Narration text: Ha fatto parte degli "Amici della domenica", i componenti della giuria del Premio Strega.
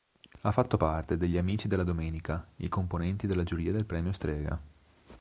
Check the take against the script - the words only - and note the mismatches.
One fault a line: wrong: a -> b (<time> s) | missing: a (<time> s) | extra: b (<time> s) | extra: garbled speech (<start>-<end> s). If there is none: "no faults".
no faults